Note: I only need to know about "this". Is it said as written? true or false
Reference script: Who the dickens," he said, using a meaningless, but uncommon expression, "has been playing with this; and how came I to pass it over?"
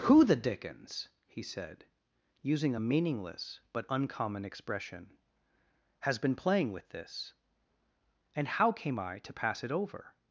true